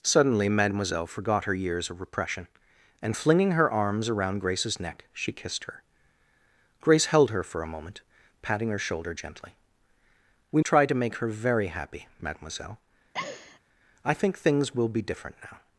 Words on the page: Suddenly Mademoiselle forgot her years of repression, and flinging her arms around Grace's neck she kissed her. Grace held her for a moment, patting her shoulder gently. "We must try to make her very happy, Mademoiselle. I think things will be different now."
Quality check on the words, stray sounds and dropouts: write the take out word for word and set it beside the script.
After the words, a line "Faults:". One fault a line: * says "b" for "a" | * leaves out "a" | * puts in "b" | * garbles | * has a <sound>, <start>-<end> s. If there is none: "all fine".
Suddenly Mademoiselle forgot her years of repression, and flinging her arms around Grace's neck she kissed her. Grace held her for a moment, patting her shoulder gently. "We try to make her very happy, Mademoiselle. I think things will be different now."
Faults:
* leaves out "must"
* has a laugh, 13.1-13.6 s